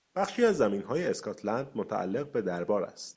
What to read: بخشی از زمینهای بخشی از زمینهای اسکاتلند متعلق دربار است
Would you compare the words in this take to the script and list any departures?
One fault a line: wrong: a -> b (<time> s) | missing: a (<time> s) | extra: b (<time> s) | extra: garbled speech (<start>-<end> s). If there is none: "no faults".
missing: بخشی از زمینهای (1.1 s)
extra: به (2.3 s)